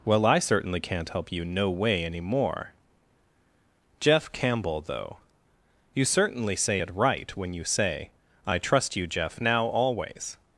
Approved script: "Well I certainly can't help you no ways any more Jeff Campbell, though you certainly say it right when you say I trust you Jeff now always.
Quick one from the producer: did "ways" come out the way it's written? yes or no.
no